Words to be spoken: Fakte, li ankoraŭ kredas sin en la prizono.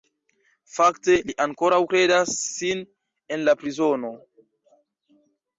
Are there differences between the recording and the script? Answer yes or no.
no